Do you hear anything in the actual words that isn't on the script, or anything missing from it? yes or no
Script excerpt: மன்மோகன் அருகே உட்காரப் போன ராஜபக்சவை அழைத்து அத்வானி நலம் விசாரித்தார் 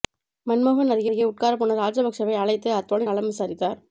yes